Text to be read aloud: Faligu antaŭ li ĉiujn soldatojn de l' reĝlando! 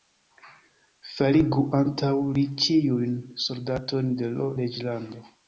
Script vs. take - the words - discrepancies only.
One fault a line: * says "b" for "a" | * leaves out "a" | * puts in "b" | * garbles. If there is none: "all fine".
all fine